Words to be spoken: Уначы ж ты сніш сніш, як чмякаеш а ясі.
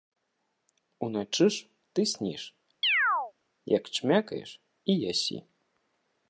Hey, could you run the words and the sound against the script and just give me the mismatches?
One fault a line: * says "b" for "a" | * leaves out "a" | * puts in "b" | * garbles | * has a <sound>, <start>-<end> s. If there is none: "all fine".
* leaves out "сніш"
* has a chirp, 2.8-3.3 s
* says "і" for "а"